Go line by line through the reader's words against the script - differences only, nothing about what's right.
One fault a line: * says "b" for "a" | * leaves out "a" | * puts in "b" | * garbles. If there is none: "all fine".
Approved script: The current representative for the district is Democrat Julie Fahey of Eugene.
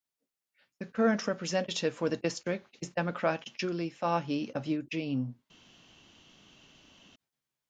all fine